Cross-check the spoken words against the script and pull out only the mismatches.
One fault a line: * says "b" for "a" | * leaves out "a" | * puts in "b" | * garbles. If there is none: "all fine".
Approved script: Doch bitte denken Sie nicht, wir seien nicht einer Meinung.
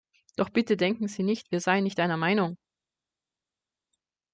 all fine